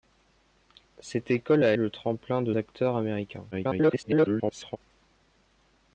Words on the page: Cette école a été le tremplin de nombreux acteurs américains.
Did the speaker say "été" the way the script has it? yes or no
no